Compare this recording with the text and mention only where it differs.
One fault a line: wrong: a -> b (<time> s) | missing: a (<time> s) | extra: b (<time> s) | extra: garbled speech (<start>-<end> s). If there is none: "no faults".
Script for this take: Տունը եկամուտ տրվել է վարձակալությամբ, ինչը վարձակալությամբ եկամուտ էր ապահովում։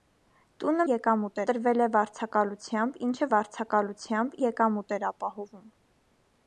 no faults